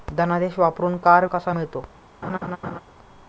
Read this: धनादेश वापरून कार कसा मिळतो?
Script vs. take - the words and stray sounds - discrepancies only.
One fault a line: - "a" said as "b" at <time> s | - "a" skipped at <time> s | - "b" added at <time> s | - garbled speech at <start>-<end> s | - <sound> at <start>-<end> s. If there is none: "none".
- laugh at 2.2-2.8 s